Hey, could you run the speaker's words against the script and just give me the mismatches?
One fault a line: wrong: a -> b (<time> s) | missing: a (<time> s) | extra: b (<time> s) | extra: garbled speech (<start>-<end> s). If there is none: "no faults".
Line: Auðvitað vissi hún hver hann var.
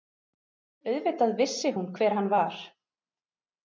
no faults